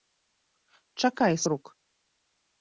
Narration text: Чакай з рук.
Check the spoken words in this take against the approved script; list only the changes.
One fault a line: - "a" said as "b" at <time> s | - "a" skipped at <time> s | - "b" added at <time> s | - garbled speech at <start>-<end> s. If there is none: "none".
none